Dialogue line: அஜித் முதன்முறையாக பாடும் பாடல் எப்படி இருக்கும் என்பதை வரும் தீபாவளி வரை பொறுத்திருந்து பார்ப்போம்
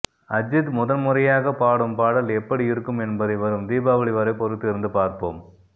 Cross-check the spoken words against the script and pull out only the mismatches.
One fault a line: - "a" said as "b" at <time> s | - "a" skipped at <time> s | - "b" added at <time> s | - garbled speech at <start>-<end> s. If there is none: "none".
none